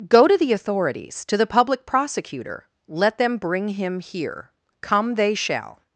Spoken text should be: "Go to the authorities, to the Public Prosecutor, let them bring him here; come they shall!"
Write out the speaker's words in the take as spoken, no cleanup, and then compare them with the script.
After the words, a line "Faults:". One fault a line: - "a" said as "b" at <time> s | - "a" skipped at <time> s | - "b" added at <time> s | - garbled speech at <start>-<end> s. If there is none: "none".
"Go to the authorities, to the Public Prosecutor, let them bring him here; come they shall!"
Faults:
none